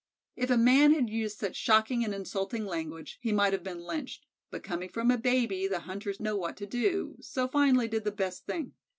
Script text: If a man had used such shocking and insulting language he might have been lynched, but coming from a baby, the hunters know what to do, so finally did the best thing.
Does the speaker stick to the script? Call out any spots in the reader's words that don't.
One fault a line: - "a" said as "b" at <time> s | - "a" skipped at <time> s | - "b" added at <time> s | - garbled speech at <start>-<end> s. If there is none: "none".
none